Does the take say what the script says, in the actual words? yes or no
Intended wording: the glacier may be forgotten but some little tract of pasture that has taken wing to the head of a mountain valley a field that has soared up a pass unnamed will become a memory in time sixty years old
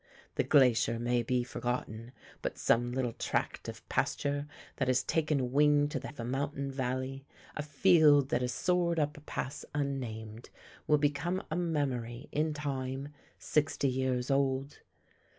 no